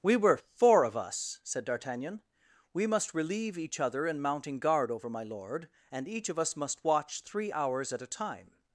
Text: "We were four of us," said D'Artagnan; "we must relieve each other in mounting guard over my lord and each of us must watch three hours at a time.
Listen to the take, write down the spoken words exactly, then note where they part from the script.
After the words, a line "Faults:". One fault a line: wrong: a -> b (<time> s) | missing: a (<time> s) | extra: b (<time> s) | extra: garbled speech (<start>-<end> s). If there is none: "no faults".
"We were four of us," said D'Artagnan; "we must relieve each other in mounting guard over my lord and each of us must watch three hours at a time.
Faults:
no faults